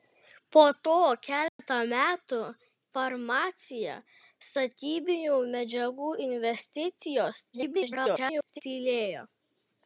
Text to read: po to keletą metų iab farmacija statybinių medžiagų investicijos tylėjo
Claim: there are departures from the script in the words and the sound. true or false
true